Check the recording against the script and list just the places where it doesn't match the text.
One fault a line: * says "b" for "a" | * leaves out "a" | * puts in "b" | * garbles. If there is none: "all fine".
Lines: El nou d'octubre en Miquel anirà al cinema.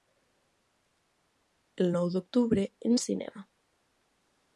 * leaves out "Miquel anirà"